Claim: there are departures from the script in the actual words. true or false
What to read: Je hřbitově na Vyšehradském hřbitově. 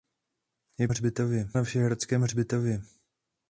false